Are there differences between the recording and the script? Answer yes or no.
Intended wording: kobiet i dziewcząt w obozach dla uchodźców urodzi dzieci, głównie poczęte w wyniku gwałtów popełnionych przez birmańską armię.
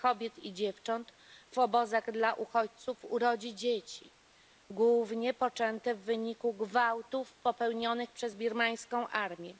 no